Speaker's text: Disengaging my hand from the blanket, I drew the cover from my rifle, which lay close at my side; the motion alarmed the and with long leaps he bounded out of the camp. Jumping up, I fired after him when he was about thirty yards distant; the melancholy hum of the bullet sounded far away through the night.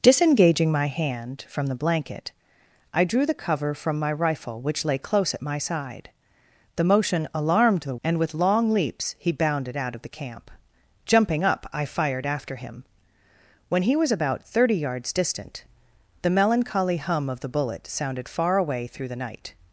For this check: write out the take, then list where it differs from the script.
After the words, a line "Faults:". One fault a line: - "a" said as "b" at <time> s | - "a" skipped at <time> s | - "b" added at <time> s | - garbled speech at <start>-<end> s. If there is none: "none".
Disengaging my hand from the blanket, I drew the cover from my rifle, which lay close at my side; the motion alarmed the and with long leaps he bounded out of the camp. Jumping up, I fired after him when he was about thirty yards distant; the melancholy hum of the bullet sounded far away through the night.
Faults:
none